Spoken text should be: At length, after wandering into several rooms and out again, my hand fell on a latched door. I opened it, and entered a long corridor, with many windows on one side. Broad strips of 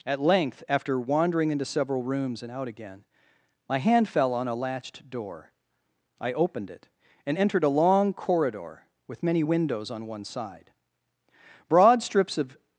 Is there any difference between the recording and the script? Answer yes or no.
no